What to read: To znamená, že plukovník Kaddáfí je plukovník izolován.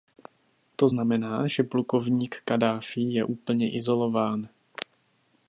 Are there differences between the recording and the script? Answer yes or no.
yes